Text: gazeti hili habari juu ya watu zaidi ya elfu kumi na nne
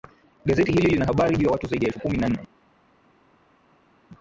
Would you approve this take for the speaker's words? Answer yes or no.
no